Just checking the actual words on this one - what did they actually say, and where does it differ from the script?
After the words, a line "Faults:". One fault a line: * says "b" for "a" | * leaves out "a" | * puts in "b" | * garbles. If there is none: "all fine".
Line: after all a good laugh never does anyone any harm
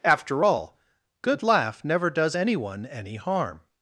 after all good laugh never does anyone any harm
Faults:
* leaves out "a"